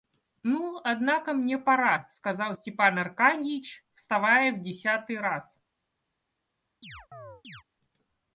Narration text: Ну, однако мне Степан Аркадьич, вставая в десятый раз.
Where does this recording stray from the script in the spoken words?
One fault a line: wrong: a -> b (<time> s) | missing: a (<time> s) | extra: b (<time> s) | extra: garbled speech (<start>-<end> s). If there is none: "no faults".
extra: пора сказал (1.6 s)